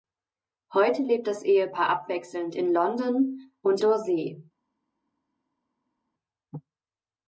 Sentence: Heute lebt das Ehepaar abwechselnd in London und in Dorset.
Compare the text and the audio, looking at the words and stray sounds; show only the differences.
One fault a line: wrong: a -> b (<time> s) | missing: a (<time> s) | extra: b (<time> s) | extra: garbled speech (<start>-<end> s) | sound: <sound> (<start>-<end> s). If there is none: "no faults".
missing: in (3.8 s)